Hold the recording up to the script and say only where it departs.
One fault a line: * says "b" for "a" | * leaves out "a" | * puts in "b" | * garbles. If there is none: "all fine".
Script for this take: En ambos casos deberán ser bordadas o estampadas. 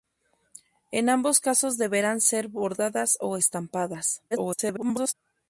* garbles